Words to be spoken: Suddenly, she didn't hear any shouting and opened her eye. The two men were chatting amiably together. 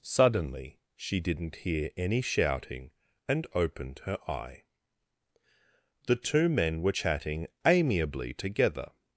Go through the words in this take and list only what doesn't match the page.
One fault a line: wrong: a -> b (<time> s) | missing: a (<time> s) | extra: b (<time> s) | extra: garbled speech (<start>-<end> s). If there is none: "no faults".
no faults